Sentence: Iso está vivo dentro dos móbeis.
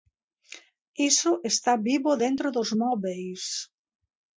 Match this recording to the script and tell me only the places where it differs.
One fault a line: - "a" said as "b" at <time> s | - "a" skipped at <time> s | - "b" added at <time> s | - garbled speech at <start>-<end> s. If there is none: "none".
none